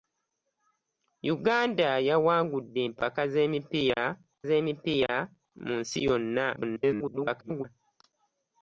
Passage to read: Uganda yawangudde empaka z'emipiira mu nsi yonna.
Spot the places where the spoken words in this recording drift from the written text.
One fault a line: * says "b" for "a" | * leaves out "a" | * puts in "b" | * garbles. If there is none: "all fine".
* puts in "z'emipiira"
* garbles